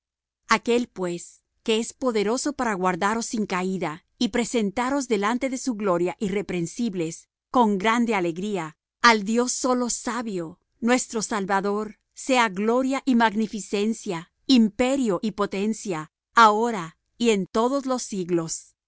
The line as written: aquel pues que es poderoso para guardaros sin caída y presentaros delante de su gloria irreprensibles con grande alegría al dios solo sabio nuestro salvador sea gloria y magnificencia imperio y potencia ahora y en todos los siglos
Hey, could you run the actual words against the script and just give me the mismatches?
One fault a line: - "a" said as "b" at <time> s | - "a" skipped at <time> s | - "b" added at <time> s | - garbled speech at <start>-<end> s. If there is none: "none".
none